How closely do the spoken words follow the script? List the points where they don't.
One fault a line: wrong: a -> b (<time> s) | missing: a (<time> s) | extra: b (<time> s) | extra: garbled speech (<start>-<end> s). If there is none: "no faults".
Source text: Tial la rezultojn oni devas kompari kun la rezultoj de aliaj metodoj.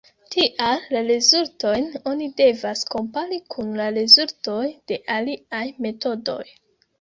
no faults